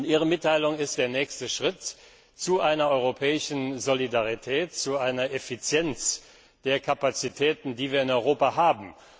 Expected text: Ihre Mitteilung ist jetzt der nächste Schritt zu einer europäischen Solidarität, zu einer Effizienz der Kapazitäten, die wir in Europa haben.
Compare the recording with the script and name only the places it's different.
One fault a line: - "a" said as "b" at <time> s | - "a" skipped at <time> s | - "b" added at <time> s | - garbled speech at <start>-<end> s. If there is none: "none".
- "jetzt" skipped at 0.9 s